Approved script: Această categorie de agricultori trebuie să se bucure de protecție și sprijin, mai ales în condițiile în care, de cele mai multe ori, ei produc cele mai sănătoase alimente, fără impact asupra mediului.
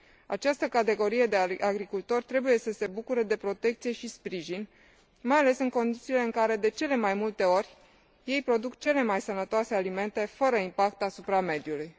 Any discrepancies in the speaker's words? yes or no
no